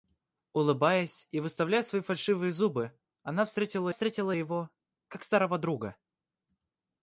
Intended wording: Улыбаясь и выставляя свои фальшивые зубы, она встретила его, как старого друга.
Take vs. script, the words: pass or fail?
fail